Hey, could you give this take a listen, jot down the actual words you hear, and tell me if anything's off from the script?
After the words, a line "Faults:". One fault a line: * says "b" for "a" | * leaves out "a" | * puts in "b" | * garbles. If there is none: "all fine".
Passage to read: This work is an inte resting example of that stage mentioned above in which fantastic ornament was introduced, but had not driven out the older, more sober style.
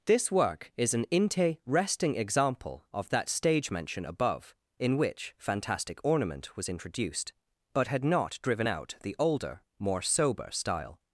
This work is an inte resting example of that stage mention above in which fantastic ornament was introduced, but had not driven out the older, more sober style.
Faults:
* says "mention" for "mentioned"